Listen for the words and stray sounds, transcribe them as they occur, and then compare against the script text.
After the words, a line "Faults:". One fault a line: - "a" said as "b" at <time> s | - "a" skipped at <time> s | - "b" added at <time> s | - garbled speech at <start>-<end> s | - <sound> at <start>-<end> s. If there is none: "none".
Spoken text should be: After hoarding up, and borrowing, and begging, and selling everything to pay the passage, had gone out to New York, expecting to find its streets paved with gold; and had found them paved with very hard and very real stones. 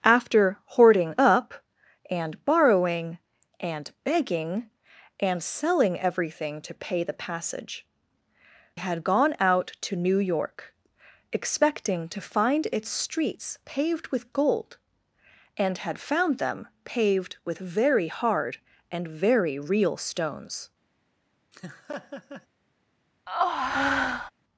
After hoarding up, and borrowing, and begging, and selling everything to pay the passage, had gone out to New York, expecting to find its streets paved with gold; and had found them paved with very hard and very real stones.
Faults:
- laugh at 21.5-22.5 s
- breath at 23.3-24.3 s